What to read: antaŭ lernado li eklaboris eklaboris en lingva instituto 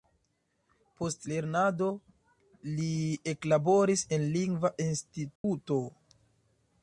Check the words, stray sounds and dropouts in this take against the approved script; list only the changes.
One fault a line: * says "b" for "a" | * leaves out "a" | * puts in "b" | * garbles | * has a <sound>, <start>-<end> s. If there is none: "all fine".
* says "post" for "antaŭ"
* leaves out "eklaboris"
* has a dropout, 5.4-5.4 s